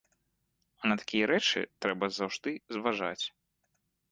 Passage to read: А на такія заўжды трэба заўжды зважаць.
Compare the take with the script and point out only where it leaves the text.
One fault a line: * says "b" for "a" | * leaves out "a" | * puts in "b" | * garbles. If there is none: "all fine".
* says "рэчы" for "заўжды"